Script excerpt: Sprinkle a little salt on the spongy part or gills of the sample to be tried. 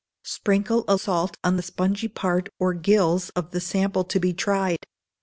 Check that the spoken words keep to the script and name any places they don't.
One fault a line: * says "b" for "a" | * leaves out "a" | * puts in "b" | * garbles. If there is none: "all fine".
* leaves out "little"